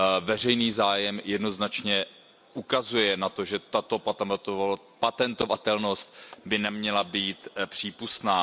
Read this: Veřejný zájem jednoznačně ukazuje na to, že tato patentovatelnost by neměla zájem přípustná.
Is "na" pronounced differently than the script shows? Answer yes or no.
no